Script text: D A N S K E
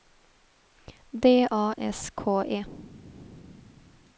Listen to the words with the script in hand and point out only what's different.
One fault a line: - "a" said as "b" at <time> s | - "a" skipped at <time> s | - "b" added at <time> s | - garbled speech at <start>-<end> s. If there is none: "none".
- "N" skipped at 1.8 s